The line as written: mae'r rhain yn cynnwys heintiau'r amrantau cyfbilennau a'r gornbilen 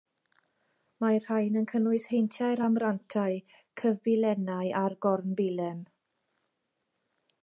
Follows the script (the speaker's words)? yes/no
yes